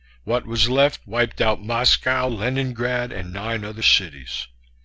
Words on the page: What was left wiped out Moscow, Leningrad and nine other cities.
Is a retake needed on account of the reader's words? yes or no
no